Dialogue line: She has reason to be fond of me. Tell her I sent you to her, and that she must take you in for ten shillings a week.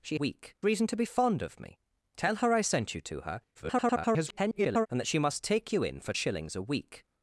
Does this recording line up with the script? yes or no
no